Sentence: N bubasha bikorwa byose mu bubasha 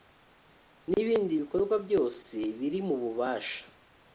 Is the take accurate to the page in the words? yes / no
no